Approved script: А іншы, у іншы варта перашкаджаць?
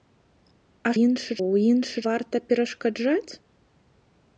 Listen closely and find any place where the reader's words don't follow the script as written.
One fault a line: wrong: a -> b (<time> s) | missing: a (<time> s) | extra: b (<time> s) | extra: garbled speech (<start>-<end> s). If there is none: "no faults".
no faults